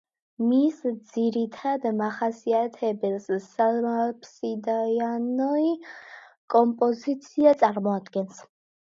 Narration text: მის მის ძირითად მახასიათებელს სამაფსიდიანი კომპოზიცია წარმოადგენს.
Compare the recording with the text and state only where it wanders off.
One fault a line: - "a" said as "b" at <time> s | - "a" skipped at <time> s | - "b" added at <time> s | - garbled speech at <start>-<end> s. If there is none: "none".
- "მის" skipped at 0.8 s